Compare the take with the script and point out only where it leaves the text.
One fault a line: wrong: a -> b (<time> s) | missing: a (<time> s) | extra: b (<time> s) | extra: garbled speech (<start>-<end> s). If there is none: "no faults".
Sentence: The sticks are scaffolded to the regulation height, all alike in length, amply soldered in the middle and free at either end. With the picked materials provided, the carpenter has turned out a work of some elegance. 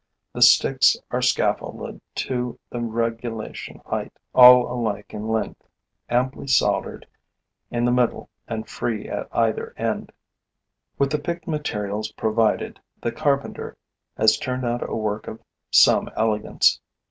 no faults